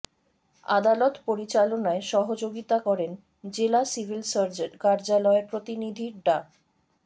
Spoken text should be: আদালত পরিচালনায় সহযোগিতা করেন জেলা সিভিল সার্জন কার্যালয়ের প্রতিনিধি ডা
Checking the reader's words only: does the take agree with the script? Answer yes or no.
yes